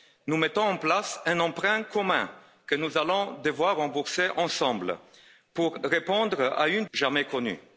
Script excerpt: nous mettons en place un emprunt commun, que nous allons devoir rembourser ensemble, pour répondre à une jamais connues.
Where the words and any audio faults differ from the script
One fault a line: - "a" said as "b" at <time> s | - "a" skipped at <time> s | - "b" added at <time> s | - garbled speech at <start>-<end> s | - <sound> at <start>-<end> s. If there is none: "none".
none